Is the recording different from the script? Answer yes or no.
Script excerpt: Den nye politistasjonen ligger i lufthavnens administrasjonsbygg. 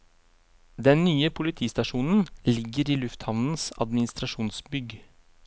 no